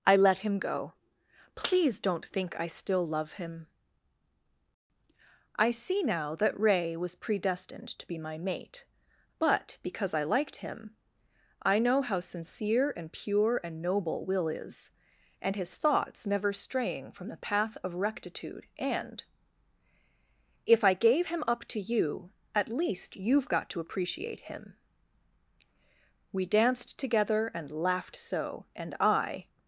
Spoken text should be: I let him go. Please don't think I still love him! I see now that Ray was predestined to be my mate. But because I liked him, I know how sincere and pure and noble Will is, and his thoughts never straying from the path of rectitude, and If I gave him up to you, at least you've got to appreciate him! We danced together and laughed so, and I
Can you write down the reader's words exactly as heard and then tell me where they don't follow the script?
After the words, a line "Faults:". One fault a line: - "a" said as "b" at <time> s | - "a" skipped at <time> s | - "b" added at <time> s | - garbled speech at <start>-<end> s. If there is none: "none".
I let him go. Please don't think I still love him! I see now that Ray was predestined to be my mate. But because I liked him, I know how sincere and pure and noble Will is, and his thoughts never straying from the path of rectitude, and If I gave him up to you, at least you've got to appreciate him! We danced together and laughed so, and I
Faults:
none